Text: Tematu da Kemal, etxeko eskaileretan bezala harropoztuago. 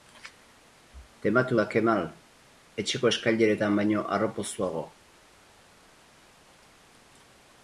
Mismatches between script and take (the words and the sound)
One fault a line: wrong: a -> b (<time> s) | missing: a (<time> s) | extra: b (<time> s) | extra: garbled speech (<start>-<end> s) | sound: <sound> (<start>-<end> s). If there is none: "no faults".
wrong: bezala -> baino (3.8 s)